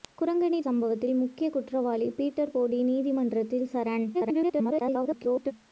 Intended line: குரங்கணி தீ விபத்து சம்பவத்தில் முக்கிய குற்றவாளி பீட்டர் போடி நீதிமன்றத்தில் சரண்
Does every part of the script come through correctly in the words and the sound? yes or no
no